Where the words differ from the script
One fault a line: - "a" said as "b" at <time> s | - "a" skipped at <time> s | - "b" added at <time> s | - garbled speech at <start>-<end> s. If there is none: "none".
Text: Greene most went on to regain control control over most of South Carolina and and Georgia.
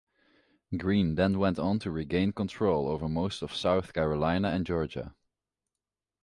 - "most" said as "then" at 1.1 s
- "control" skipped at 2.9 s
- "and" skipped at 4.6 s